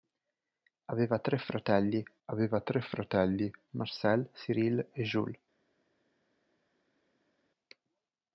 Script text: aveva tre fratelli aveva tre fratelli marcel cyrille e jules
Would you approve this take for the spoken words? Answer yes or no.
yes